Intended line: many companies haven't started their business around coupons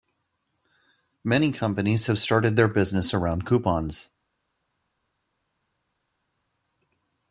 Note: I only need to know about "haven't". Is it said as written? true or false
false